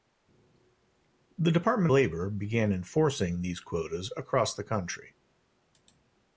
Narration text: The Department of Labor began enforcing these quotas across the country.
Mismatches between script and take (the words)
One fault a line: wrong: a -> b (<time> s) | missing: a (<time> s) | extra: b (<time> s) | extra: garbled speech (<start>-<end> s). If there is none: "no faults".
missing: of (1.9 s)